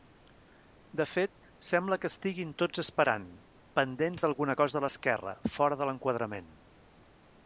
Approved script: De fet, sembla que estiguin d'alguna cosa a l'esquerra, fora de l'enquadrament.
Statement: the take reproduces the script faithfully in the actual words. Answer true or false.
false